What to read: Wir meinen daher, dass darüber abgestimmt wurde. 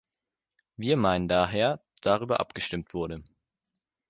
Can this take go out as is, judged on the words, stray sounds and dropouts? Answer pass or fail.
fail